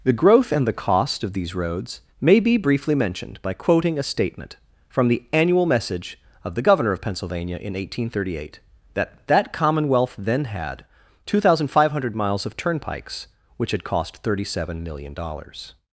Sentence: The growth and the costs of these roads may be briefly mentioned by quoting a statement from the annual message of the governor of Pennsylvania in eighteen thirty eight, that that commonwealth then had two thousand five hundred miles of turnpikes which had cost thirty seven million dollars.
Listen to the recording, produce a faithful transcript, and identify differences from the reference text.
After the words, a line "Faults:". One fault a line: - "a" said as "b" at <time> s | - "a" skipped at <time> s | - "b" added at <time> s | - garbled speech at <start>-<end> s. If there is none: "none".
The growth and the cost of these roads may be briefly mentioned by quoting a statement from the annual message of the governor of Pennsylvania in eighteen thirty eight, that that commonwealth then had two thousand five hundred miles of turnpikes which had cost thirty seven million dollars.
Faults:
- "costs" said as "cost" at 0.8 s